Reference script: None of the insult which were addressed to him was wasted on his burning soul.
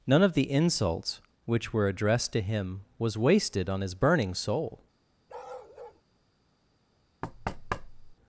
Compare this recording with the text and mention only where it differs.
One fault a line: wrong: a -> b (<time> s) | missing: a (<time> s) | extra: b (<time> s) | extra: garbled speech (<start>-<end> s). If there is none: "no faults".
wrong: insult -> insults (0.5 s)